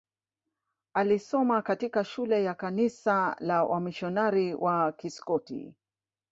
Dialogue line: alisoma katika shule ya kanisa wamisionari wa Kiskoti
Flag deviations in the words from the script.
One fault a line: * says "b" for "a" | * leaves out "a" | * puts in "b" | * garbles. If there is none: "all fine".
* puts in "la"